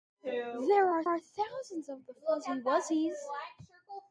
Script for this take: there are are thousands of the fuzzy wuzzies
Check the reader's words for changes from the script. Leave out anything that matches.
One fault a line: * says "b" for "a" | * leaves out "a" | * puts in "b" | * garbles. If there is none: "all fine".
all fine